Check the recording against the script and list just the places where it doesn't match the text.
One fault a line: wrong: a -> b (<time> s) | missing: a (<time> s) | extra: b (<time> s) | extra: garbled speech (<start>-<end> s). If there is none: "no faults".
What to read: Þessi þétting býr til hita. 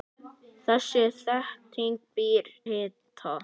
missing: til (2.5 s)